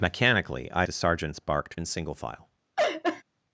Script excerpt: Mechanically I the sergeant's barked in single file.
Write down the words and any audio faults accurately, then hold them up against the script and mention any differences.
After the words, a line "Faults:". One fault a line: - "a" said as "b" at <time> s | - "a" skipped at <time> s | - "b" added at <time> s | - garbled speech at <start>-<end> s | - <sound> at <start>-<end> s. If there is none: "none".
Mechanically I the sergeant's barked in single file.
Faults:
- laugh at 2.8-3.2 s